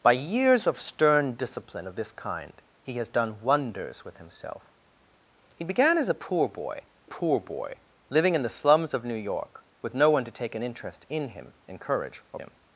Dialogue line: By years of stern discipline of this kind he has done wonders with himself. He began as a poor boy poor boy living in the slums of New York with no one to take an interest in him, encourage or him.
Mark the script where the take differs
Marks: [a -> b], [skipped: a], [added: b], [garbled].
By years of stern discipline of this kind he has done wonders with himself. He began as a poor boy poor boy living in the slums of New York with no one to take an interest in him, encourage or him.